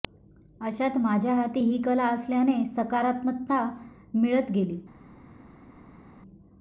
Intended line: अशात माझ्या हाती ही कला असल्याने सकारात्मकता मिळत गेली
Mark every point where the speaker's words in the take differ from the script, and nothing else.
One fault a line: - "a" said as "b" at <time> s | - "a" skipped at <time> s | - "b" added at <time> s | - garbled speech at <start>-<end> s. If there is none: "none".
none